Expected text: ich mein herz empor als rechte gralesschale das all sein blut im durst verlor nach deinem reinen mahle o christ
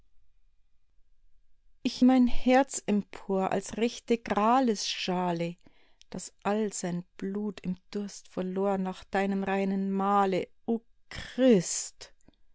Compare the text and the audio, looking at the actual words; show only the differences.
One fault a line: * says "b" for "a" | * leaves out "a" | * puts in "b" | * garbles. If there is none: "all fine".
all fine